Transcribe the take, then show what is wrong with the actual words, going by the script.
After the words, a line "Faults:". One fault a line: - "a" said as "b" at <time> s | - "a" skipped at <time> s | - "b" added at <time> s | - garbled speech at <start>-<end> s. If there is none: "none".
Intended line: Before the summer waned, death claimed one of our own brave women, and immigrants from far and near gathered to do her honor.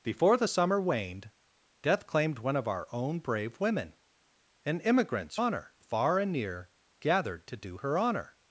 Before the summer waned, death claimed one of our own brave women, and immigrants honor far and near gathered to do her honor.
Faults:
- "from" said as "honor" at 5.4 s